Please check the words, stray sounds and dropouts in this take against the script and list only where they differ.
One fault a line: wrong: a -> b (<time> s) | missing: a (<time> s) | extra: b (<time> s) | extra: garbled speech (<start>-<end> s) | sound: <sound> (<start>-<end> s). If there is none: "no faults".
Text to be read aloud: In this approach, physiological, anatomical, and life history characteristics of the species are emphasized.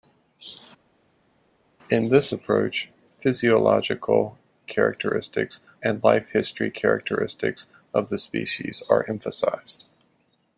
wrong: anatomical -> characteristics (4.6 s)